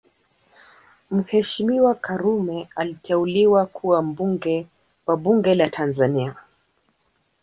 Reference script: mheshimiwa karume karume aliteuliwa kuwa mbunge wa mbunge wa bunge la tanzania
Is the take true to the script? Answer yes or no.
no